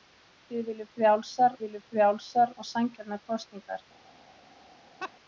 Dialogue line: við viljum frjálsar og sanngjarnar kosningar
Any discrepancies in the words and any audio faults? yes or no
yes